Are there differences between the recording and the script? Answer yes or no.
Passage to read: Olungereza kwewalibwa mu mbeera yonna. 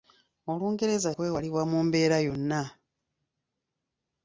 no